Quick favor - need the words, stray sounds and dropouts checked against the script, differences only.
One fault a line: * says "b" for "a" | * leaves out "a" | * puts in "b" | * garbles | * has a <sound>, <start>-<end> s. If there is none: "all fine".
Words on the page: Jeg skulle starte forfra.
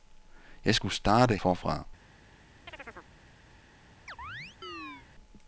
* has a chirp, 2.7-3.1 s
* has a chirp, 4.1-5.1 s